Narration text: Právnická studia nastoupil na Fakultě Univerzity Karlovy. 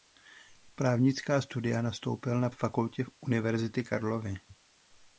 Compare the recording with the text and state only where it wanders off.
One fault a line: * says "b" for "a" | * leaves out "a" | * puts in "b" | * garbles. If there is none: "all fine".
all fine